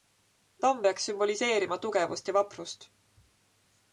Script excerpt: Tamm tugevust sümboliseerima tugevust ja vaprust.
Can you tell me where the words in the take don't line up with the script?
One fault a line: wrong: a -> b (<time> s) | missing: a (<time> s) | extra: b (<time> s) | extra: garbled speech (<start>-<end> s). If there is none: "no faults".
wrong: tugevust -> peaks (0.8 s)